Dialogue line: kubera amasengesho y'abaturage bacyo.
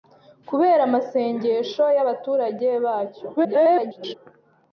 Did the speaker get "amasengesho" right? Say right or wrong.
right